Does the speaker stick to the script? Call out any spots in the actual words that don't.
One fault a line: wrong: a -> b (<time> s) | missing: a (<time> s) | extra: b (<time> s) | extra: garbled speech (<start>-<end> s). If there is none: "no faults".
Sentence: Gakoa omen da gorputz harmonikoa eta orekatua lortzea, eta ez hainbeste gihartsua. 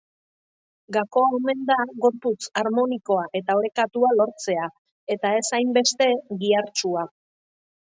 no faults